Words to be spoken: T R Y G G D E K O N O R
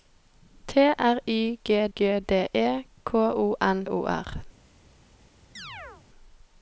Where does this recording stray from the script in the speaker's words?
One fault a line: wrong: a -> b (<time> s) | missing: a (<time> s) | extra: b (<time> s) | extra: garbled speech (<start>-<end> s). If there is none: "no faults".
no faults